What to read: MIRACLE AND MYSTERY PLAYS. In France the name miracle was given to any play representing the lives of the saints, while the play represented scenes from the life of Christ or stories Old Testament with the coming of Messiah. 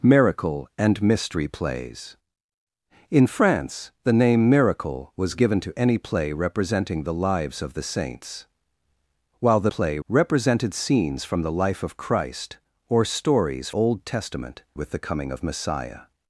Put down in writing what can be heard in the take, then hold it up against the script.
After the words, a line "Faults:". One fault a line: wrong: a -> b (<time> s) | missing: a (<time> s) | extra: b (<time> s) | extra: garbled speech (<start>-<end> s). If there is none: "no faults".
MIRACLE AND MYSTERY PLAYS. In France the name miracle was given to any play representing the lives of the saints, while the play represented scenes from the life of Christ or stories Old Testament with the coming of Messiah.
Faults:
no faults